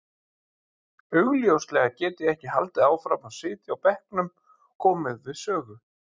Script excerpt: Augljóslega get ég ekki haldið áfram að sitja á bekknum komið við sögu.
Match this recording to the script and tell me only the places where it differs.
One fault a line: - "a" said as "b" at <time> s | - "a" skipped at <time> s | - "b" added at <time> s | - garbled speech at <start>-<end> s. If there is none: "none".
none